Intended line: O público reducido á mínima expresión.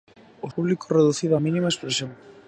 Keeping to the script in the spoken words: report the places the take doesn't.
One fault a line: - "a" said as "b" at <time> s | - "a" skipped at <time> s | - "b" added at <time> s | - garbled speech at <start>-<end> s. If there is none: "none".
none